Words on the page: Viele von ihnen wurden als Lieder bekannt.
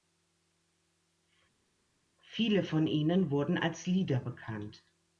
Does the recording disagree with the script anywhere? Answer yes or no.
no